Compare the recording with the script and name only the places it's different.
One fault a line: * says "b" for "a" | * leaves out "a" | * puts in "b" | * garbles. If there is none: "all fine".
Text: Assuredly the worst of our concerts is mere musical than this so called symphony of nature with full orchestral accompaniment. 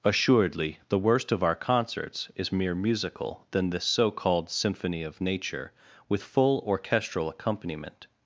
all fine